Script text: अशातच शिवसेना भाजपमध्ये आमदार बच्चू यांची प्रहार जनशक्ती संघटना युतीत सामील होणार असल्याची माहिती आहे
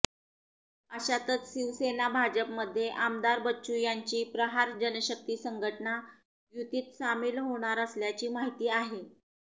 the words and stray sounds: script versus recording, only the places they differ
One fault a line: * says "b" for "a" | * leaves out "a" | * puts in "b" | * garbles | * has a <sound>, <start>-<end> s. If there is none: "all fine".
all fine